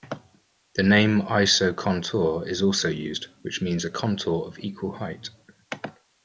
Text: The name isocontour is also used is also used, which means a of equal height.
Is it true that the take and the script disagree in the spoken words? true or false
true